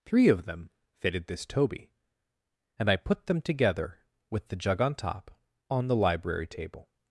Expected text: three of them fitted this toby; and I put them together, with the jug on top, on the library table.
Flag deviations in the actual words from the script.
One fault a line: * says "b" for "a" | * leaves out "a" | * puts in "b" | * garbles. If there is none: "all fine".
all fine